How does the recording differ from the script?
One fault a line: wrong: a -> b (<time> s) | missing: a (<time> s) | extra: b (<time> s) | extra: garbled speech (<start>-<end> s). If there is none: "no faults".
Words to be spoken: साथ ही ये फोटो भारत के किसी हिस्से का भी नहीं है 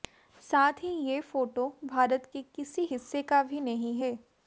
no faults